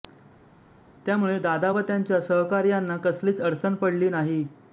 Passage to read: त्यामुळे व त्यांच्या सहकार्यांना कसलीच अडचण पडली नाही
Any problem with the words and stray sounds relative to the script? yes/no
yes